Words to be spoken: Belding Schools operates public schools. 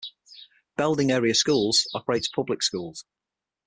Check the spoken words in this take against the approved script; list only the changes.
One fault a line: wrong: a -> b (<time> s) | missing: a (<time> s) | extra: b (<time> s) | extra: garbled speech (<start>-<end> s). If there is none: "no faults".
extra: Area (1.1 s)